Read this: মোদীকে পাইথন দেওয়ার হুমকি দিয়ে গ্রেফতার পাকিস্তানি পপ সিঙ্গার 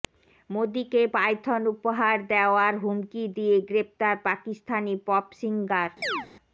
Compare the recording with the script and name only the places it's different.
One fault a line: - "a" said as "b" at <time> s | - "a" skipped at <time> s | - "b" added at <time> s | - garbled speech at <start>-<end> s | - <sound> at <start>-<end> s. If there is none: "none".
- "উপহার" added at 1.7 s
- chirp at 6.0-6.3 s